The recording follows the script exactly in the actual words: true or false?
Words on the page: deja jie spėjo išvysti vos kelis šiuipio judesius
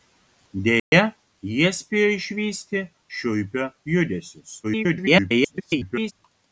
false